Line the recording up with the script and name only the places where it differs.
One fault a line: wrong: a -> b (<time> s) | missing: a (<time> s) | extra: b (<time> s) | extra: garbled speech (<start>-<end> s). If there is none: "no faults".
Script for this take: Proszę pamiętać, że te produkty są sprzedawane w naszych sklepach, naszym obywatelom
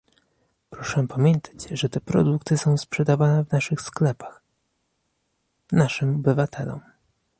no faults